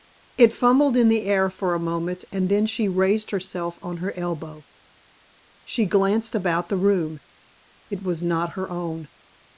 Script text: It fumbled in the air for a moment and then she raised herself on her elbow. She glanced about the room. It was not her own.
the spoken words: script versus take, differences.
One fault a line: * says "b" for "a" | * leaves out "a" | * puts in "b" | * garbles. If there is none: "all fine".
all fine